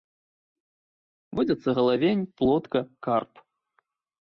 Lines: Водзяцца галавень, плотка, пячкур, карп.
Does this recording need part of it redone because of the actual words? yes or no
yes